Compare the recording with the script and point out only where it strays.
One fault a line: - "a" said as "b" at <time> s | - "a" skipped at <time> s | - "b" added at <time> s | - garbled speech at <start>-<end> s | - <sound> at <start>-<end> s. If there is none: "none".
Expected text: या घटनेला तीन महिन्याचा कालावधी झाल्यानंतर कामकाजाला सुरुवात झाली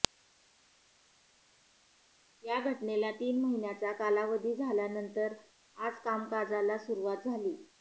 - "आज" added at 5.8 s